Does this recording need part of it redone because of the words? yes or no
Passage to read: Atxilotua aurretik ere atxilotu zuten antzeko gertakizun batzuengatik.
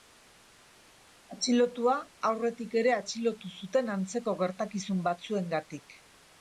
no